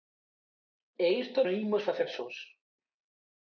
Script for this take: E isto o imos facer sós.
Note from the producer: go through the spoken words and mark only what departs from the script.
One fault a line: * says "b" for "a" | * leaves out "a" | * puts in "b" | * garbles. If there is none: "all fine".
all fine